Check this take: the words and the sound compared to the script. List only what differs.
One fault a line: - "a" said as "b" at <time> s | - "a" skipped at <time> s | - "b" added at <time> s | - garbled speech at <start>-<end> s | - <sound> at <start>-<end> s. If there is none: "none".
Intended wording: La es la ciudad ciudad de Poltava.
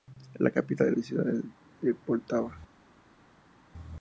- "capital" added at 0.5 s
- "ciudad" skipped at 1.4 s